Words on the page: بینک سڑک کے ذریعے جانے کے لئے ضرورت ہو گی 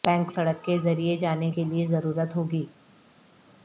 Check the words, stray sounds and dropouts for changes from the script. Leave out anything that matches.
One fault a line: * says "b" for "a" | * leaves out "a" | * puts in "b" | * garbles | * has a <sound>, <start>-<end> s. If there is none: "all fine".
all fine